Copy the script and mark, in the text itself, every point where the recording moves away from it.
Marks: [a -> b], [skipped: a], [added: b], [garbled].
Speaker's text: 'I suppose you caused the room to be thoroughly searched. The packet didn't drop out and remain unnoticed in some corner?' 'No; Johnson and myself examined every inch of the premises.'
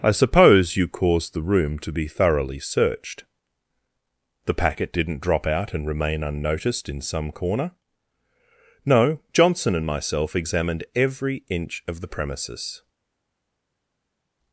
'I suppose you caused the room to be thoroughly searched. The packet didn't drop out and remain unnoticed in some corner?' 'No; Johnson and myself examined every inch of the premises.'